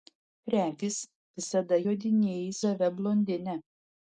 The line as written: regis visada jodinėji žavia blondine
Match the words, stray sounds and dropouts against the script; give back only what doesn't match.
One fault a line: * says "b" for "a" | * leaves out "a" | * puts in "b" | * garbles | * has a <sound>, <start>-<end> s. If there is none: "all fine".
all fine